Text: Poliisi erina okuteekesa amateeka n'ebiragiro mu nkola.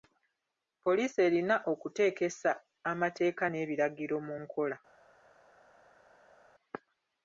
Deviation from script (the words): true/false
false